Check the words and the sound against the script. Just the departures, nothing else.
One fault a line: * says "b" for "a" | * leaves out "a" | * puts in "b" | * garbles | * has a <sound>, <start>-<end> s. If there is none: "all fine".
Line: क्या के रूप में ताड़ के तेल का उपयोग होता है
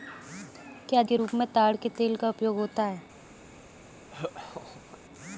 * has a laugh, 4.1-5.0 s